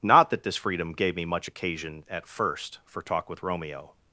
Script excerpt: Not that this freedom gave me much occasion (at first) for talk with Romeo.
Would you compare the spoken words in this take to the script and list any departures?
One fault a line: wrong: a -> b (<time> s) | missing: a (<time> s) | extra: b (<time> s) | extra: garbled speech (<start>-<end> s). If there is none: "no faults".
no faults